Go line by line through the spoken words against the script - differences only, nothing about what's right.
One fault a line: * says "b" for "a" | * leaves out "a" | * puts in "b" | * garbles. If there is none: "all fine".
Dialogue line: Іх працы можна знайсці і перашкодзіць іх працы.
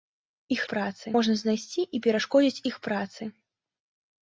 all fine